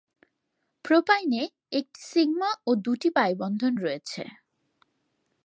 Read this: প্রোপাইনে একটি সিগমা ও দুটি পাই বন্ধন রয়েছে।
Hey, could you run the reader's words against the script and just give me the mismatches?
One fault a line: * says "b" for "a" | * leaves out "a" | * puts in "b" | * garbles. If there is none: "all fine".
all fine